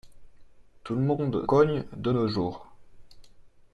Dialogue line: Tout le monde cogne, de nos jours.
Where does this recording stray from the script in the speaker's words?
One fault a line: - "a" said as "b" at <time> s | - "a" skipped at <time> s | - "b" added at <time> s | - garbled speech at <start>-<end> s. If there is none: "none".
none